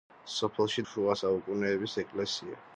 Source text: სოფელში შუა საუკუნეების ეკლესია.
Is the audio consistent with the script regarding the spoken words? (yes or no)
yes